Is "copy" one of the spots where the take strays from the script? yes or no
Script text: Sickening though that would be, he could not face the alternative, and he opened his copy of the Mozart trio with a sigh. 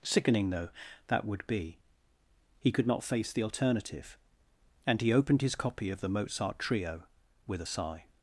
no